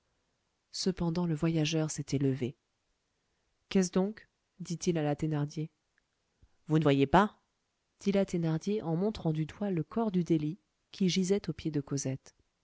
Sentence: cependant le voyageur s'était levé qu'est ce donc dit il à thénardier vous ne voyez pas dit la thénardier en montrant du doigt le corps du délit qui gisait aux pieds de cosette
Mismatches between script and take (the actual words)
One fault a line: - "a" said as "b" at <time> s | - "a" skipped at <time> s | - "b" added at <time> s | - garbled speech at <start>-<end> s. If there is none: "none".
- "la" added at 5.0 s